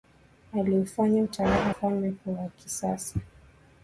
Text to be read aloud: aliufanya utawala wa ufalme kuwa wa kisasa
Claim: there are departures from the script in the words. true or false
true